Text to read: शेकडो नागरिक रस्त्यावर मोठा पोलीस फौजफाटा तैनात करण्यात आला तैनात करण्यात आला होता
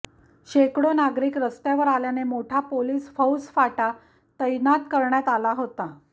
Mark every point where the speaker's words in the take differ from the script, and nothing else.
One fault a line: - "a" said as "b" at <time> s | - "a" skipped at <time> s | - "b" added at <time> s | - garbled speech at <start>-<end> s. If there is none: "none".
- "आल्याने" added at 1.9 s
- "तैनात करण्यात आला" skipped at 5.5 s